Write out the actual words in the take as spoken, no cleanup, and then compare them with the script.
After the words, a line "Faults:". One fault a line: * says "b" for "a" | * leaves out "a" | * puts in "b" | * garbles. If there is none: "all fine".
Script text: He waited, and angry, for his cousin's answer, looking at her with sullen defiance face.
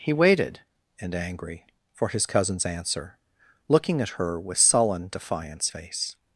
He waited, and angry, for his cousin's answer, looking at her with sullen defiance face.
Faults:
all fine